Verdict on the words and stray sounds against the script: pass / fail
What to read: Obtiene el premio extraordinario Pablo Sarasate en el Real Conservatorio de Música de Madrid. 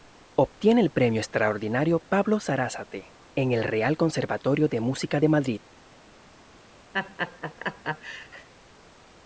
fail